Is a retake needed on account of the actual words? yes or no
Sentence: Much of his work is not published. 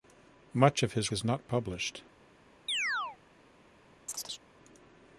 yes